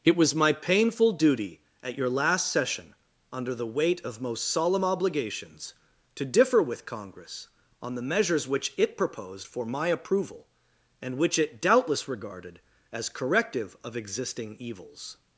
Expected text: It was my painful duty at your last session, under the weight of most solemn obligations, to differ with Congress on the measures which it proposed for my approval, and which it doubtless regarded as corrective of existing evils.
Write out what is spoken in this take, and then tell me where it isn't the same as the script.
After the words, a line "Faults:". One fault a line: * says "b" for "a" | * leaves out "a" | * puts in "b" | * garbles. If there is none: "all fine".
It was my painful duty at your last session, under the weight of most solemn obligations, to differ with Congress on the measures which it proposed for my approval, and which it doubtless regarded as corrective of existing evils.
Faults:
all fine